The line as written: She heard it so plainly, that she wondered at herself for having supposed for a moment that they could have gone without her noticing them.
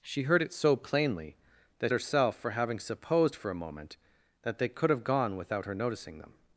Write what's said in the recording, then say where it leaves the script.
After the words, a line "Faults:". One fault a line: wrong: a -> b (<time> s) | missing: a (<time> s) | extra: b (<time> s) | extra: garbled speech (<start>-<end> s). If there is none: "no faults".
She heard it so plainly, that herself for having supposed for a moment that they could have gone without her noticing them.
Faults:
missing: she wondered at (1.9 s)